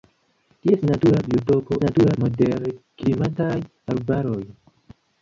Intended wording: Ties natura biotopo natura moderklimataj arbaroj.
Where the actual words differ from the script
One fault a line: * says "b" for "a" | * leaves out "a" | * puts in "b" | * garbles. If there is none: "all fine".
all fine